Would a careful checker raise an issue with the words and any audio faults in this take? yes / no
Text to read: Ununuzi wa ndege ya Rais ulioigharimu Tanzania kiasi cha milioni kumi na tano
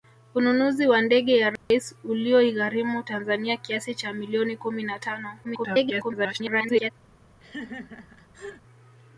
yes